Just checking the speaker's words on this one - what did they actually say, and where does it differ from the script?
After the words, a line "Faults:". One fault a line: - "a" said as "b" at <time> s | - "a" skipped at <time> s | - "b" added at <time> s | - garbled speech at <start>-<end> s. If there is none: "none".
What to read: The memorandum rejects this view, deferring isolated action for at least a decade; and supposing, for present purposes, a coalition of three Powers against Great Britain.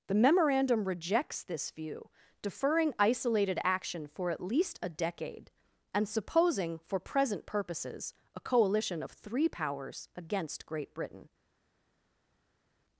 The memorandum rejects this view, deferring isolated action for at least a decade; and supposing, for present purposes, a coalition of three Powers against Great Britain.
Faults:
none